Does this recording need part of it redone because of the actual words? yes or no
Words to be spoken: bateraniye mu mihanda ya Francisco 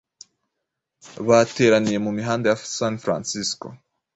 yes